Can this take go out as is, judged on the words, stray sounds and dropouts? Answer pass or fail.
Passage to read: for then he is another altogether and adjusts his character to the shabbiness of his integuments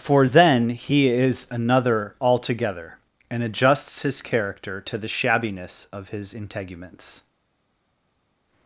pass